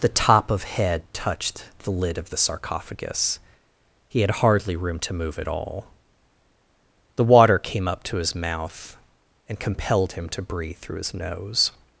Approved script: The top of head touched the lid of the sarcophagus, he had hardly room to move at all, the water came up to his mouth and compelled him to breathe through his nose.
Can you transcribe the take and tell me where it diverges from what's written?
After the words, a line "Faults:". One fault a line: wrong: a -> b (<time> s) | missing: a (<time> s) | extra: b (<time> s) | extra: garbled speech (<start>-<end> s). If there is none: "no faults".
The top of head touched the lid of the sarcophagus, he had hardly room to move at all, the water came up to his mouth and compelled him to breathe through his nose.
Faults:
no faults